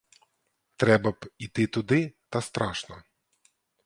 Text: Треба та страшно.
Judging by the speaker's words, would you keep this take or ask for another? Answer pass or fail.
fail